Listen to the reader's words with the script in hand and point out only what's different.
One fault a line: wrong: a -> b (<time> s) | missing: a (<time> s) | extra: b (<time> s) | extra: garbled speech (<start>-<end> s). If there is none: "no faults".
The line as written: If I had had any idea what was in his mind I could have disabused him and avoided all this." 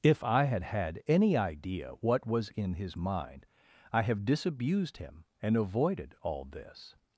missing: could (4.0 s)